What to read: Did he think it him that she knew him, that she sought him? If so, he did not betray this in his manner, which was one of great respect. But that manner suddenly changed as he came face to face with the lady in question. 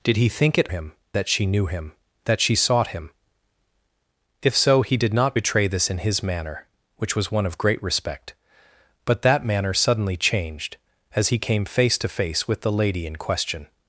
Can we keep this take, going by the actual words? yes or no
yes